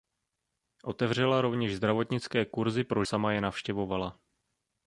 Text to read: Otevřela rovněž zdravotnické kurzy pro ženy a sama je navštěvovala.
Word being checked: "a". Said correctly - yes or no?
no